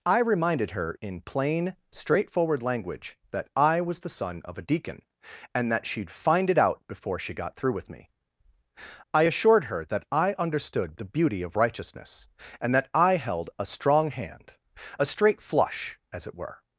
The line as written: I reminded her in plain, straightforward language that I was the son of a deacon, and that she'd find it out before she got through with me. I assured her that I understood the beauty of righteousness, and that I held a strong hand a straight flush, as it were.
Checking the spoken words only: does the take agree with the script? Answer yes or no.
yes